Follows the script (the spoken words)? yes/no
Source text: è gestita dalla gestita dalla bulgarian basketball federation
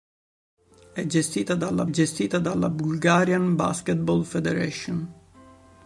yes